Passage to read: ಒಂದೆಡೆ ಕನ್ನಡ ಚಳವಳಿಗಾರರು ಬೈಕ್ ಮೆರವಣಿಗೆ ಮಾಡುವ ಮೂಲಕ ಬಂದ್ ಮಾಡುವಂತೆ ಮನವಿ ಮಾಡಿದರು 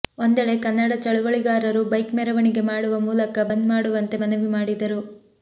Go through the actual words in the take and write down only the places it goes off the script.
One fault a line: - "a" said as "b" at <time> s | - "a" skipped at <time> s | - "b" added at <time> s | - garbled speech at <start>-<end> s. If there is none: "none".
none